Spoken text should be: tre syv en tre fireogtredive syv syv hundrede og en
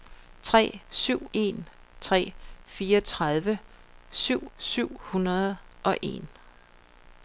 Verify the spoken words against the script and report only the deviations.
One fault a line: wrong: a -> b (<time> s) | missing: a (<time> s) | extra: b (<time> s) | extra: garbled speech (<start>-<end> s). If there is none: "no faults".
no faults